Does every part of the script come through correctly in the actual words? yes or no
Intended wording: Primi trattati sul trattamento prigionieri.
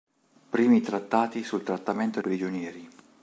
yes